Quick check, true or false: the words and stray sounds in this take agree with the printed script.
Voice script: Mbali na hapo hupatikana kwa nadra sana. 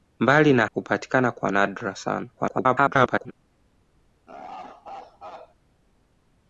false